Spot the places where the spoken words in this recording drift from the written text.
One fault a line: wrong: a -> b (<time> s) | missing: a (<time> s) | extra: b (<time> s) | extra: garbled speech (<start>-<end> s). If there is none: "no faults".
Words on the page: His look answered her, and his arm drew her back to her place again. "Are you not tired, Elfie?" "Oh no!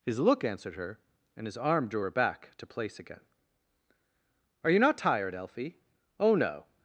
missing: her (2.7 s)